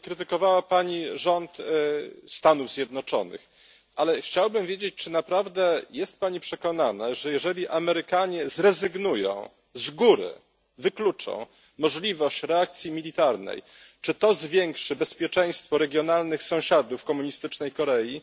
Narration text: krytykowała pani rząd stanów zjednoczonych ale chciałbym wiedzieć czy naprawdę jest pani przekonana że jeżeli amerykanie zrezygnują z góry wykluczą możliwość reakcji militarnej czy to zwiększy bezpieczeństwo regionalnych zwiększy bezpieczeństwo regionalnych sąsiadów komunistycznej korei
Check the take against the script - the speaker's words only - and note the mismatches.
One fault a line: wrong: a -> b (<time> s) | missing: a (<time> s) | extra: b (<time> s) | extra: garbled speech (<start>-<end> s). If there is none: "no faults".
missing: zwiększy bezpieczeństwo regionalnych (16.4 s)